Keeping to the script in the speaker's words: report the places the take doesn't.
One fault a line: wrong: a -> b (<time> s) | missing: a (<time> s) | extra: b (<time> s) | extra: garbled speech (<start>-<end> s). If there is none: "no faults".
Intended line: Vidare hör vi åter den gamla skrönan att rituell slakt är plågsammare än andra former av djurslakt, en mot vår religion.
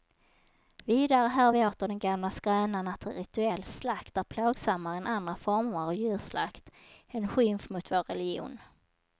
extra: skymf (7.3 s)